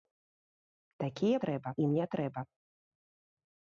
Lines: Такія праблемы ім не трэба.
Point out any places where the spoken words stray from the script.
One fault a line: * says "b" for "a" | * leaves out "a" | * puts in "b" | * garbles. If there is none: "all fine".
* says "трэба" for "праблемы"